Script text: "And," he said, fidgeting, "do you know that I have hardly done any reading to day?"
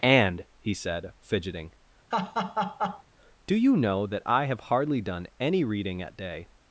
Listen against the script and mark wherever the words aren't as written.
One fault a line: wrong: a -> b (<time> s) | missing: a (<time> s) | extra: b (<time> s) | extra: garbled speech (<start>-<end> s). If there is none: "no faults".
wrong: to -> at (6.0 s)